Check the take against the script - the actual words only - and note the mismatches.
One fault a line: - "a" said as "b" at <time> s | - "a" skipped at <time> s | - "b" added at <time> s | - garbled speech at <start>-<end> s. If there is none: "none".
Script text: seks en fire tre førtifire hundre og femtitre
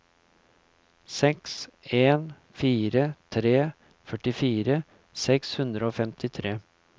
- "seks" added at 5.3 s